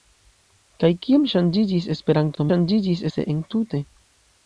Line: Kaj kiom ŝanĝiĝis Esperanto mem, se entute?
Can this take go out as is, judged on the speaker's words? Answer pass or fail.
fail